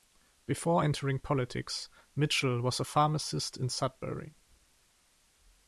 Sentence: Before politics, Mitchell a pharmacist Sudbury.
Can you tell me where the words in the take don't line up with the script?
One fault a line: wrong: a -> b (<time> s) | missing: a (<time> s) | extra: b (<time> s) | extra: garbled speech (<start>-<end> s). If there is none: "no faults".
extra: entering (0.8 s)
extra: was (2.6 s)
extra: in (3.6 s)